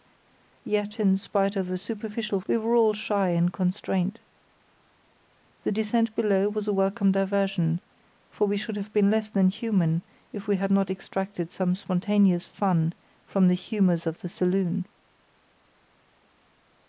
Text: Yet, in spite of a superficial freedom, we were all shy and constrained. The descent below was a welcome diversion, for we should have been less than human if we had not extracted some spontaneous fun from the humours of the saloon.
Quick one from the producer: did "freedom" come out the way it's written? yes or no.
no